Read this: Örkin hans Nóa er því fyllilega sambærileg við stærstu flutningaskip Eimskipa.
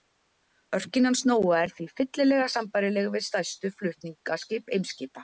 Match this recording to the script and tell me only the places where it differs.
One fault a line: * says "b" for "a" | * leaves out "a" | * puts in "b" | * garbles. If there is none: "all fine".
all fine